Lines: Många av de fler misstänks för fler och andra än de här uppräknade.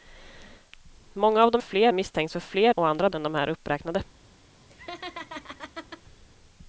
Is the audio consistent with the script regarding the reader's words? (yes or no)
yes